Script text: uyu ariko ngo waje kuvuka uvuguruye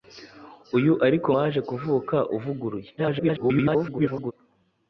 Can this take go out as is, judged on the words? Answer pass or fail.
fail